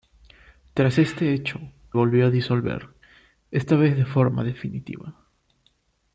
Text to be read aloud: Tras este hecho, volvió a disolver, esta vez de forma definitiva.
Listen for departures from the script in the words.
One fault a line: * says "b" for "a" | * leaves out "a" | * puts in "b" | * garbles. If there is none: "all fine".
all fine